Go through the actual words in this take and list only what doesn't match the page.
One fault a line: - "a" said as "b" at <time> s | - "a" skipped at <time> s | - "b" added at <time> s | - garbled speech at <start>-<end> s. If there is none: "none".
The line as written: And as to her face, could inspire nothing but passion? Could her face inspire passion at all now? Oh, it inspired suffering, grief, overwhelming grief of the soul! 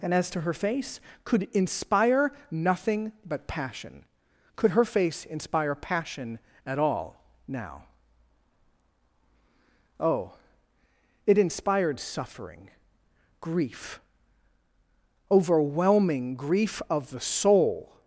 none